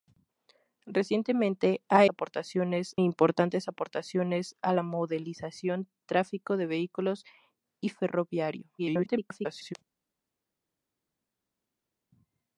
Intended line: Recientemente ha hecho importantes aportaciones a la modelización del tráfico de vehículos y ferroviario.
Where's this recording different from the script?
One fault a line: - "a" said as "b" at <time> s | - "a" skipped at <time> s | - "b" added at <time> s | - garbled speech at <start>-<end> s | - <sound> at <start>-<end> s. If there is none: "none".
- "hecho" said as "aportaciones" at 2.1 s
- "del" skipped at 5.9 s
- garbled speech at 8.8-9.7 s